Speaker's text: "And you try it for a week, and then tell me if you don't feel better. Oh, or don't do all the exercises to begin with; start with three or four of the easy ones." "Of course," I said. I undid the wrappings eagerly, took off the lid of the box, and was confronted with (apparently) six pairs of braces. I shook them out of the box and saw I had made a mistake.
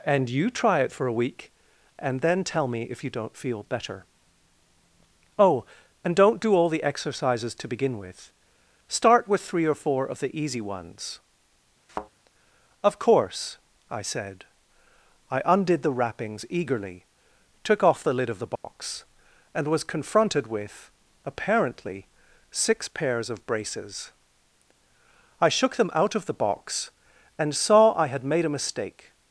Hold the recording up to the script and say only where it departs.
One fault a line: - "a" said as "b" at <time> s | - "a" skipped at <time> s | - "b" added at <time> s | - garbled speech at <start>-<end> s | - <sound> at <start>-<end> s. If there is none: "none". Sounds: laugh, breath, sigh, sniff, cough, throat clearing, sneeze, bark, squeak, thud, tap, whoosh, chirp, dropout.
- "or" said as "and" at 6.0 s
- thud at 11.9-12.1 s
- dropout at 18.6-18.6 s